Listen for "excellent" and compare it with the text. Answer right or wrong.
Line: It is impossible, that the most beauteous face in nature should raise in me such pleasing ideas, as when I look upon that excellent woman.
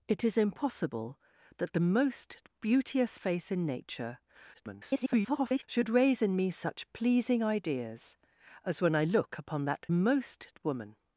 wrong